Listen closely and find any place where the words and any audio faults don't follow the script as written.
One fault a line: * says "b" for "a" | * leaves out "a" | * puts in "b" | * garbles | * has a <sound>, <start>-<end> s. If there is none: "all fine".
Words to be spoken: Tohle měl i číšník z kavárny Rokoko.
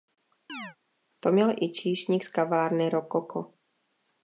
* has a chirp, 0.5-0.8 s
* says "To" for "Tohle"